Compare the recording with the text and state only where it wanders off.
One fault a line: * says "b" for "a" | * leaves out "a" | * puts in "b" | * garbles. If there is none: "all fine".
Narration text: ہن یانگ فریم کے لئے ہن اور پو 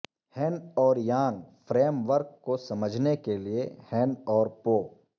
* puts in "اور"
* puts in "ورک کو سمجھنے"